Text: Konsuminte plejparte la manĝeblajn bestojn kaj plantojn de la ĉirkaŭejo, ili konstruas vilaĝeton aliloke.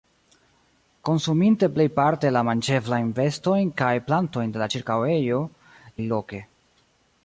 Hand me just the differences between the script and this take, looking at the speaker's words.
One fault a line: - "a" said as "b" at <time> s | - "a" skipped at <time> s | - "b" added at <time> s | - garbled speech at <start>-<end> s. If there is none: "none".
- "ili konstruas vilaĝeton" skipped at 5.4 s